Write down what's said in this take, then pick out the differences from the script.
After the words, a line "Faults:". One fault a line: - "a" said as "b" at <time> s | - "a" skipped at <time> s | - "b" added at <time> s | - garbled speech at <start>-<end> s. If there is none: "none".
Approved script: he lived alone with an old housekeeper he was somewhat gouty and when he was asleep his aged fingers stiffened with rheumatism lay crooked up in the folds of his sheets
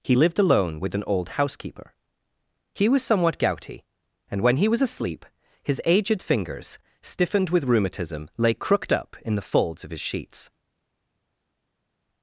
he lived alone with an old housekeeper he was somewhat gouty and when he was asleep his aged fingers stiffened with rheumatism lay crooked up in the folds of his sheets
Faults:
none